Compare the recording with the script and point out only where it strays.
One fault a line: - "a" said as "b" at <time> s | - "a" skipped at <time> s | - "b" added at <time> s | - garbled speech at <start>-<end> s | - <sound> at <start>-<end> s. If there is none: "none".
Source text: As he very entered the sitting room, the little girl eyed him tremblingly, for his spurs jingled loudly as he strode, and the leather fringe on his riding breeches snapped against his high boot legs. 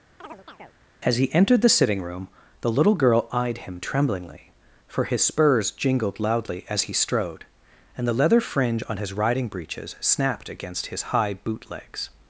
- chirp at 0.2-0.8 s
- "very" skipped at 1.3 s